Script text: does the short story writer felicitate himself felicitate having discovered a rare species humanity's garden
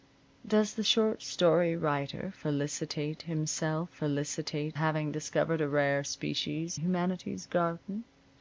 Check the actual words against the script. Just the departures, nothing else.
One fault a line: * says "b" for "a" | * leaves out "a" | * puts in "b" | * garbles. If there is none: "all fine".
all fine